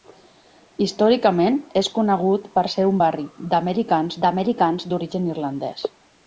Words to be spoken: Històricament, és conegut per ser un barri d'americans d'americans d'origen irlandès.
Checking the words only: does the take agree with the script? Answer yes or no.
yes